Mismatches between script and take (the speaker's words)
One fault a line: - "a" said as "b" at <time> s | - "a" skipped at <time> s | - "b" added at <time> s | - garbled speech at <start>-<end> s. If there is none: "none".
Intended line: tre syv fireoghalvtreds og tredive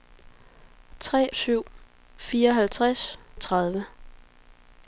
none